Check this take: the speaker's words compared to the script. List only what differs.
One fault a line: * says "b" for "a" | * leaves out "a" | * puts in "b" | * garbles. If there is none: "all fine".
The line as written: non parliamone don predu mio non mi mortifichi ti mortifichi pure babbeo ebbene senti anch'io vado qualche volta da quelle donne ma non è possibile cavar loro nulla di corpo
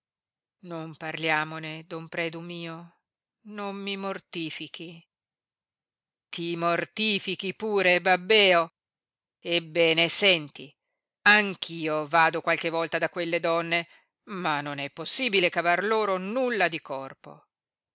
all fine